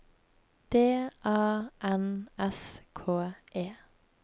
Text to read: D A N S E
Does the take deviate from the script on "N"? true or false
false